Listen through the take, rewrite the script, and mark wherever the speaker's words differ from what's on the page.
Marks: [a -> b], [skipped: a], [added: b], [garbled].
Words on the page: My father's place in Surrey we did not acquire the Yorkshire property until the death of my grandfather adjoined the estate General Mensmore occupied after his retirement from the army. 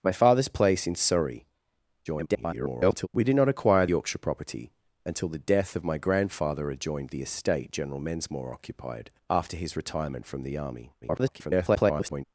My father's place in Surrey [garbled] we did not acquire [skipped: the] Yorkshire property until the death of my grandfather adjoined the estate General Mensmore occupied after his retirement from the army. [garbled]